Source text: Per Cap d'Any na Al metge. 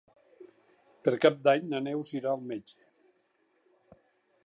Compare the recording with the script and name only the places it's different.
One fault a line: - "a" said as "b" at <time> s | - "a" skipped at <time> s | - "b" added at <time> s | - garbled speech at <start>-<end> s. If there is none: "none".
- "Neus irà" added at 1.9 s